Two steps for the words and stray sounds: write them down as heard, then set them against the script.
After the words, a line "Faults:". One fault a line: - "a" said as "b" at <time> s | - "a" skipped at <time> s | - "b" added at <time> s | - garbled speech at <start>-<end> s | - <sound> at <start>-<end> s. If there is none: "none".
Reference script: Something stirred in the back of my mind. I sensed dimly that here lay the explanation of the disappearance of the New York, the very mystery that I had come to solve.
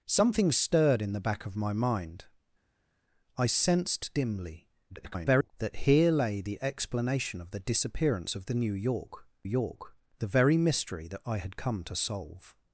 Something stirred in the back of my mind. I sensed dimly [garbled] that here lay the explanation of the disappearance of the New York York, the very mystery that I had come to solve.
Faults:
- garbled speech at 4.9-5.5 s
- "York" added at 9.4 s